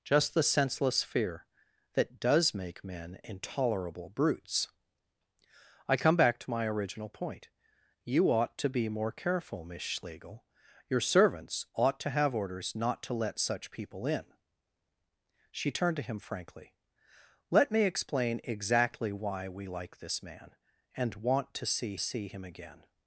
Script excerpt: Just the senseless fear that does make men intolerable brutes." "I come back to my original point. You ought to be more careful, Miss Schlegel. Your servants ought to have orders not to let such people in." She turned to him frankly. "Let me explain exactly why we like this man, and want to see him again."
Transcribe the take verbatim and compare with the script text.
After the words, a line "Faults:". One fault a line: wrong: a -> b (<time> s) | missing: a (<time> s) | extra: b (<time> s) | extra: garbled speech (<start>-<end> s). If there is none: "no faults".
Just the senseless fear that does make men intolerable brutes." "I come back to my original point. You ought to be more careful, Miss Schlegel. Your servants ought to have orders not to let such people in." She turned to him frankly. "Let me explain exactly why we like this man, and want to see see him again."
Faults:
extra: see (22.0 s)